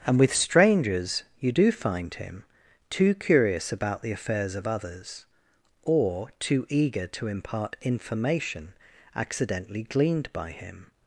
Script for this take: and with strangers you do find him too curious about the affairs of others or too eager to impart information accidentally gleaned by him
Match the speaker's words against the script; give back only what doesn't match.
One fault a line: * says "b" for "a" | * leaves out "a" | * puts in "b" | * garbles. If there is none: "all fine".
all fine